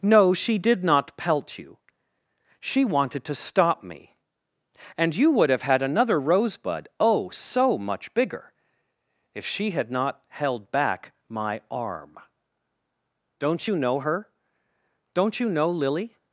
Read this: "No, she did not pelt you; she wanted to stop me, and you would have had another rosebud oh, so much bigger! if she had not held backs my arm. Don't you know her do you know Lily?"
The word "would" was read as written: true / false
true